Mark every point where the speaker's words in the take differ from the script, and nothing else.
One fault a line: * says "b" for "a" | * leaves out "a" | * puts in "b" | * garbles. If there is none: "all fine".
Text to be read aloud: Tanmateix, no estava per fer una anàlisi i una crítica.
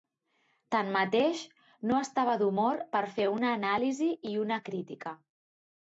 * puts in "d'humor"